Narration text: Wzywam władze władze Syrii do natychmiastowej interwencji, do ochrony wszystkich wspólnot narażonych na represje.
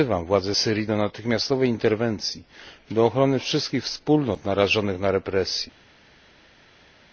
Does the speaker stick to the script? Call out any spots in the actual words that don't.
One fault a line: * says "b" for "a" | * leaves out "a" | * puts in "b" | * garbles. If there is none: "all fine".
* leaves out "władze"